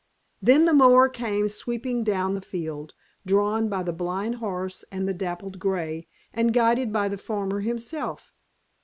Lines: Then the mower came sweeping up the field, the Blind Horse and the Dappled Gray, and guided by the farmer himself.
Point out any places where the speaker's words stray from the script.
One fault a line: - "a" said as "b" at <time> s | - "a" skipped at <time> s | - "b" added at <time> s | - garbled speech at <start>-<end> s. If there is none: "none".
- "up" said as "down" at 2.0 s
- "drawn by" added at 3.3 s